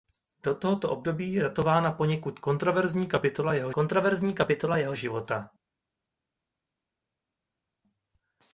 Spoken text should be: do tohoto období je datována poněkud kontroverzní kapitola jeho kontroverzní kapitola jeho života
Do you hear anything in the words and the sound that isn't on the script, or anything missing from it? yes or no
no